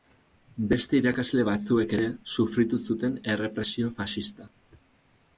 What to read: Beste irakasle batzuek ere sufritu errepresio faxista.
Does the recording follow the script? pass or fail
fail